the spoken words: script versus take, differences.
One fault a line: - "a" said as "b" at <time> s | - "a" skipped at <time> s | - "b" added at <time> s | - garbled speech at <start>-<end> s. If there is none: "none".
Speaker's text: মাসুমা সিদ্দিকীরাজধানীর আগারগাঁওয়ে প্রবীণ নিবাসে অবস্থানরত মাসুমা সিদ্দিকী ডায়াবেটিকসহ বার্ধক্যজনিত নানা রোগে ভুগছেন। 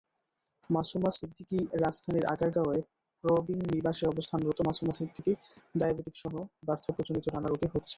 none